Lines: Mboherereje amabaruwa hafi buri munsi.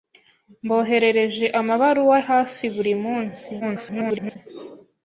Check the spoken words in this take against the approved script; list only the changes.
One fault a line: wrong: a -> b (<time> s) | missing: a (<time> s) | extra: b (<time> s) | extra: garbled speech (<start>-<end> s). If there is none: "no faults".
extra: garbled speech (3.6-4.4 s)